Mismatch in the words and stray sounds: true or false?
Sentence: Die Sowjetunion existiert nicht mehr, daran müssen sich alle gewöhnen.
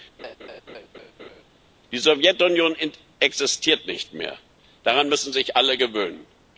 true